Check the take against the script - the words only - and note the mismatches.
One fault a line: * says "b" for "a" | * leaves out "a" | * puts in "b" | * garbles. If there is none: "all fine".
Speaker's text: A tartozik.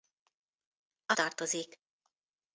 all fine